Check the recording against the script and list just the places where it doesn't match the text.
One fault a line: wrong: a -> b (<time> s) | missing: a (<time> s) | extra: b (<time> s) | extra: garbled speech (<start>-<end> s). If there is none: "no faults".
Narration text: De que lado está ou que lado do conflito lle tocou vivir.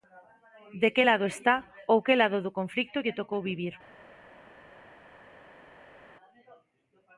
no faults